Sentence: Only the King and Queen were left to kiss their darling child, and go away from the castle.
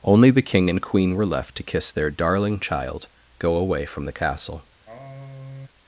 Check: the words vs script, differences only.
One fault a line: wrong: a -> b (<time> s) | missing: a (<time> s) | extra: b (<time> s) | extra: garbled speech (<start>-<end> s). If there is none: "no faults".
missing: and (3.1 s)